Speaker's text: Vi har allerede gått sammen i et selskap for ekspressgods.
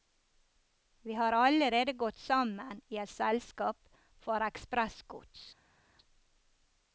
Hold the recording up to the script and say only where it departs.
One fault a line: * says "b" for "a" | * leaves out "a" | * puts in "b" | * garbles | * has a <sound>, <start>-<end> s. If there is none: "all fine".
all fine